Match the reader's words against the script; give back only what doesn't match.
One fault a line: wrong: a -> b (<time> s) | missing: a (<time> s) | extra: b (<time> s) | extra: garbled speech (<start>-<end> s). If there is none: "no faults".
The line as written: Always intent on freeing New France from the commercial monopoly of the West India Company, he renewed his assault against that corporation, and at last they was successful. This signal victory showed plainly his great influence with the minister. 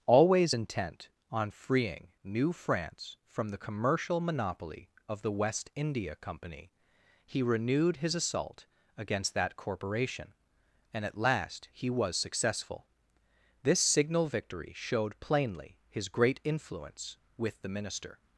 wrong: they -> he (11.7 s)